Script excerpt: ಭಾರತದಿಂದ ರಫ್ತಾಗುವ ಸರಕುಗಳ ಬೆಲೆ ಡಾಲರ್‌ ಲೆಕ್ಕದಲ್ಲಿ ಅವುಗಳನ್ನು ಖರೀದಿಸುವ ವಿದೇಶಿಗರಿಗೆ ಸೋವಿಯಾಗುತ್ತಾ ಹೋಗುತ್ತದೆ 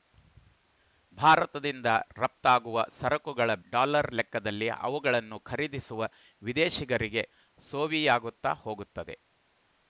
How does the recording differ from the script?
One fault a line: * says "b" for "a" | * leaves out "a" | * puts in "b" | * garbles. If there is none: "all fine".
* leaves out "ಬೆಲೆ"